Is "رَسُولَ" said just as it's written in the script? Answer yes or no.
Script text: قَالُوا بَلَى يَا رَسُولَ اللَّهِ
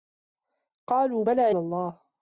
no